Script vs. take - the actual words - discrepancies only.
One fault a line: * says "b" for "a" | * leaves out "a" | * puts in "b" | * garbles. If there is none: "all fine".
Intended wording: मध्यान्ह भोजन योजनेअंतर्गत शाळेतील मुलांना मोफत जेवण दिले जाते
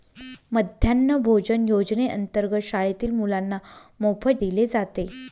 * leaves out "जेवण"